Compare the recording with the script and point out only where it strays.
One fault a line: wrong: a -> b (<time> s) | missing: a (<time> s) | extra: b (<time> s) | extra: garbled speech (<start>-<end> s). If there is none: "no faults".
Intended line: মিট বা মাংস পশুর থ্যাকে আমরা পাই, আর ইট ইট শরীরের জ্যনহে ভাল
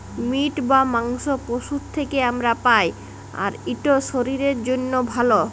missing: ইট (3.9 s)